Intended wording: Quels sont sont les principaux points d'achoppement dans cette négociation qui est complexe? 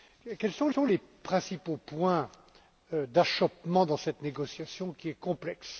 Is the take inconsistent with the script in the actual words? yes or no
no